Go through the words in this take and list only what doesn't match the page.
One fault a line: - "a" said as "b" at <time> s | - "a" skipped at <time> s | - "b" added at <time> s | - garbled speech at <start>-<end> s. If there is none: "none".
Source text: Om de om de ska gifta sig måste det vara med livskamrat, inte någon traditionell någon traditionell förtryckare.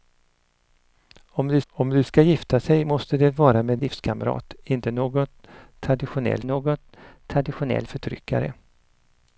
none